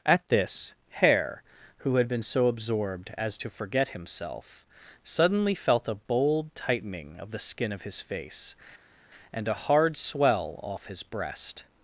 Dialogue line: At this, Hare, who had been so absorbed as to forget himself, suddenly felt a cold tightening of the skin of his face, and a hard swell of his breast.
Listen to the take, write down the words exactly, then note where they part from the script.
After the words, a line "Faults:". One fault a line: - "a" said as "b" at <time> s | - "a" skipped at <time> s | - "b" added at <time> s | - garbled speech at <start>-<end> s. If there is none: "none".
At this, Hare, who had been so absorbed as to forget himself, suddenly felt a bold tightening of the skin of his face, and a hard swell off his breast.
Faults:
- "cold" said as "bold" at 6.0 s
- "of" said as "off" at 10.6 s